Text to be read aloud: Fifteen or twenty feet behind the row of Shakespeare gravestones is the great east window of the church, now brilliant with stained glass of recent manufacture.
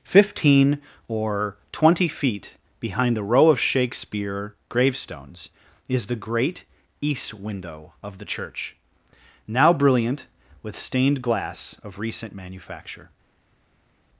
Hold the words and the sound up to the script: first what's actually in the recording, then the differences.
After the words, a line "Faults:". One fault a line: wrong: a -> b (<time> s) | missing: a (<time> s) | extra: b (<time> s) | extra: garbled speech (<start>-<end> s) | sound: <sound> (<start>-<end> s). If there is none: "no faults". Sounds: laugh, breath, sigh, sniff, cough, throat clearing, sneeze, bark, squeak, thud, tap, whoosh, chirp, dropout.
Fifteen or twenty feet behind the row of Shakespeare gravestones is the great east window of the church, now brilliant with stained glass of recent manufacture.
Faults:
no faults